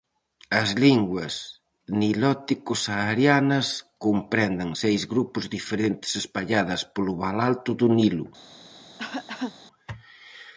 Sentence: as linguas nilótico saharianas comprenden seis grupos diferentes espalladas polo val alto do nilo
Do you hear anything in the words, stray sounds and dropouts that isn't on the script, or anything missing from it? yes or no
yes